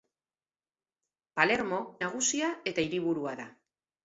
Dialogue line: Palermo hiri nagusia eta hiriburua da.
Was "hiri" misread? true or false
true